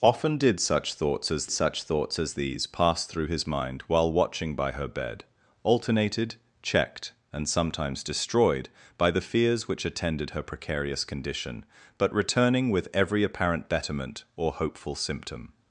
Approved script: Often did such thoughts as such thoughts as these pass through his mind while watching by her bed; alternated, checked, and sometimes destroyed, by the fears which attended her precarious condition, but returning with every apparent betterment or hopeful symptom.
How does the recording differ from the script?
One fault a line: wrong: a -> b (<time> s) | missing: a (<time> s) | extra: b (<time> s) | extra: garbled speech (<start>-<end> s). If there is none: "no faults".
no faults